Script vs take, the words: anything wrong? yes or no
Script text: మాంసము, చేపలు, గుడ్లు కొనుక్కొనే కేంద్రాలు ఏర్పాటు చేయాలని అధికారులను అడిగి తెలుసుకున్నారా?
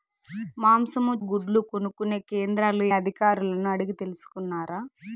yes